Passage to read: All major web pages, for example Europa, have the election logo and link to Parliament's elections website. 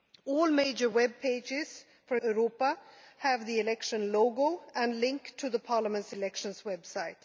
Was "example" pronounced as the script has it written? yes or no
no